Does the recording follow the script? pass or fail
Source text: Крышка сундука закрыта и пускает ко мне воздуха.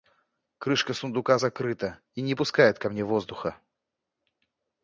fail